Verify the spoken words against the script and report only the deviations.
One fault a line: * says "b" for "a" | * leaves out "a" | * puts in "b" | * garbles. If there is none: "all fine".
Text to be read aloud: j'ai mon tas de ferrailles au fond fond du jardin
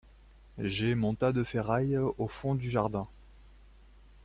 * leaves out "fond"